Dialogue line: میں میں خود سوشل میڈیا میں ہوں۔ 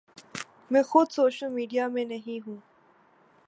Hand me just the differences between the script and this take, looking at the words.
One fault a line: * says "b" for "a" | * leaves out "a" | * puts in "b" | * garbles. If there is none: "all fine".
* leaves out "میں"
* puts in "نہیں"